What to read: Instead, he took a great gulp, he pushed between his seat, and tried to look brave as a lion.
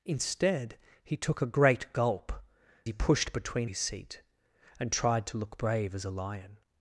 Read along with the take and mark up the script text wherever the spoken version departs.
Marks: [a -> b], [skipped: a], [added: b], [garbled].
Instead, he took a great gulp, he pushed between his seat, and tried to look brave as a lion.